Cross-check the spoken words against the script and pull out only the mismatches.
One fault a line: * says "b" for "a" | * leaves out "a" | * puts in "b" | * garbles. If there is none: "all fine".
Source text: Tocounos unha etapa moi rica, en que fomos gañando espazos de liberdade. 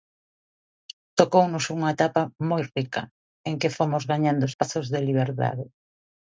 all fine